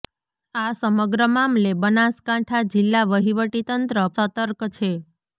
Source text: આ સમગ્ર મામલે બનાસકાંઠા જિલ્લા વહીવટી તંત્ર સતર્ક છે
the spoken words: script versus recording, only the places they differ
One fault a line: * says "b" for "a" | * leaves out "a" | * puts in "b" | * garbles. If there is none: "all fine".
all fine